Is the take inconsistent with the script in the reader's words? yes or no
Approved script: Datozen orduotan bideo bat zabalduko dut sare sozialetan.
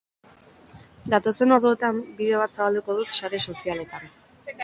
no